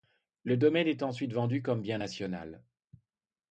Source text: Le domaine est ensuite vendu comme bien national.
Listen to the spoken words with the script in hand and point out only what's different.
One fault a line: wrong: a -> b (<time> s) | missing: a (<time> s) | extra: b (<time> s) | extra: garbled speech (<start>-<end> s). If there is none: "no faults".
no faults